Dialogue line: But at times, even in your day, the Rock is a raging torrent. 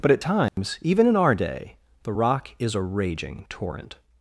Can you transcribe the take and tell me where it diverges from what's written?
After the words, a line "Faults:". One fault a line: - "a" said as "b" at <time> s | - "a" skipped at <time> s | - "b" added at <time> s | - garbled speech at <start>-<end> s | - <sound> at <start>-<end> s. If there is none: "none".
But at times, even in our day, the Rock is a raging torrent.
Faults:
- dropout at 0.5-0.6 s
- "your" said as "our" at 1.2 s